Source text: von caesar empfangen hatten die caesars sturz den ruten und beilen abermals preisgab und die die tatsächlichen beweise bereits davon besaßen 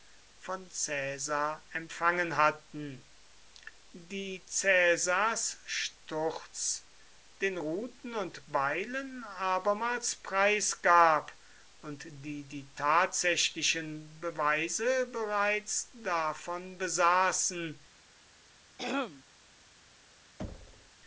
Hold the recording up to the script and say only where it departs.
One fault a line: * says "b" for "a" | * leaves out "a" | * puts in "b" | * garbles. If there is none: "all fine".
all fine